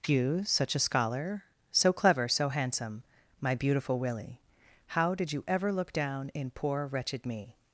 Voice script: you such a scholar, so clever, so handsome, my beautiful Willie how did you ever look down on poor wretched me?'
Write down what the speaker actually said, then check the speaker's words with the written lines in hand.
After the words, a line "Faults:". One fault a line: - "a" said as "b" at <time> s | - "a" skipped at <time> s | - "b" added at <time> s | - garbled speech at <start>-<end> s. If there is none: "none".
you such a scholar, so clever, so handsome, my beautiful Willie how did you ever look down in poor wretched me?'
Faults:
- "on" said as "in" at 6.3 s